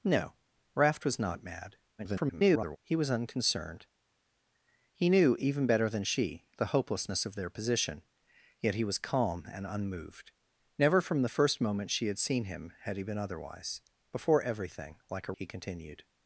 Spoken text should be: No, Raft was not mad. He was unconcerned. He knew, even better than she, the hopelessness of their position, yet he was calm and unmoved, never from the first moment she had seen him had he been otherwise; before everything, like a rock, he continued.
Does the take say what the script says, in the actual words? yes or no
no